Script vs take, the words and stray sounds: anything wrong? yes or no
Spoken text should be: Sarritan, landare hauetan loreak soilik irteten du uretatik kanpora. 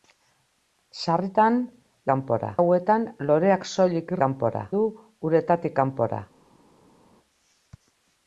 yes